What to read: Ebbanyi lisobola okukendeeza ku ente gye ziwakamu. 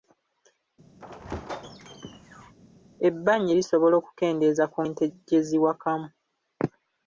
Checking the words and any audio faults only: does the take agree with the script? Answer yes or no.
no